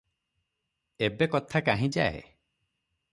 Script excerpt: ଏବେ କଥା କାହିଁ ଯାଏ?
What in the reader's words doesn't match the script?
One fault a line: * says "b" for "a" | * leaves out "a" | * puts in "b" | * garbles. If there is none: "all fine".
all fine